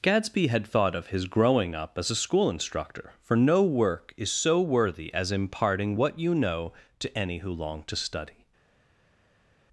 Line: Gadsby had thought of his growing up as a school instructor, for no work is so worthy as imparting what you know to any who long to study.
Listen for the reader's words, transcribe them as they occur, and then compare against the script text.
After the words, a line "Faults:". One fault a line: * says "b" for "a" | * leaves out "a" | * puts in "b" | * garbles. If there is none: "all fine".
Gadsby had thought of his growing up as a school instructor, for no work is so worthy as imparting what you know to any who long to study.
Faults:
all fine